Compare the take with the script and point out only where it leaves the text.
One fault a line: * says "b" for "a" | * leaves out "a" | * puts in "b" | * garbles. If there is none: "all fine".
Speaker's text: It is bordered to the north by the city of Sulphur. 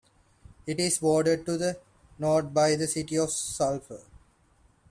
all fine